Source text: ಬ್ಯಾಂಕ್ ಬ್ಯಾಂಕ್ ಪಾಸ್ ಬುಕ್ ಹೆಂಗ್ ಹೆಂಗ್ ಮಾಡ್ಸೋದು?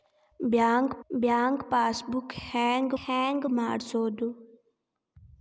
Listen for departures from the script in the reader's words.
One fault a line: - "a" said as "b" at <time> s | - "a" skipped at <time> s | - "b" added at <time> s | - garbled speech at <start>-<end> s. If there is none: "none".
none